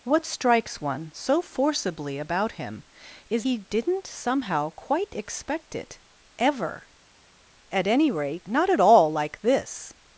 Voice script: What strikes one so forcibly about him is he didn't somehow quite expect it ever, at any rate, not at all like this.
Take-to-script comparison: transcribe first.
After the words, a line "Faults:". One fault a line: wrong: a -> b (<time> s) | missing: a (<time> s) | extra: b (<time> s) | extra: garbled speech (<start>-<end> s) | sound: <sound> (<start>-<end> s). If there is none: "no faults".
What strikes one so forcibly about him is he didn't somehow quite expect it ever, at any rate, not at all like this.
Faults:
no faults